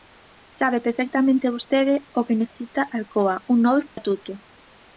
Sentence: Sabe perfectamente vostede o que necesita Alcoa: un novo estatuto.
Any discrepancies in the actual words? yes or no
no